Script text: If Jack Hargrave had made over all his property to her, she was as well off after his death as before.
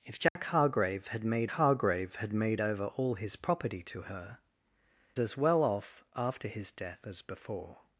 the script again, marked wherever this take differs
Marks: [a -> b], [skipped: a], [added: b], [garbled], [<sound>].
If Jack [dropout] Hargrave had made [added: Hargrave had made] over all his property to her, [skipped: she was] as well off after his death as before.